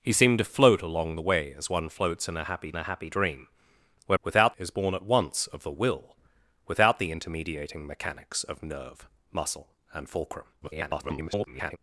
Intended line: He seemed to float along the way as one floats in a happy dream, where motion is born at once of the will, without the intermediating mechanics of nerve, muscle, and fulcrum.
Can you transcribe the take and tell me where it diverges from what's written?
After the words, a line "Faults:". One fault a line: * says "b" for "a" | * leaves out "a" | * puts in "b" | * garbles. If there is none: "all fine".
He seemed to float along the way as one floats in a happy a happy dream, where without is born at once of the will, without the intermediating mechanics of nerve, muscle, and fulcrum. [garbled]
Faults:
* puts in "a happy"
* says "without" for "motion"
* garbles